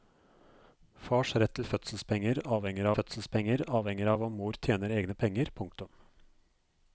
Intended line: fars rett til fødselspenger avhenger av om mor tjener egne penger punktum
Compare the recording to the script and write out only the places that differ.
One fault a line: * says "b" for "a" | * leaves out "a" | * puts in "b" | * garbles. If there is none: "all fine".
* puts in "fødselspenger avhenger"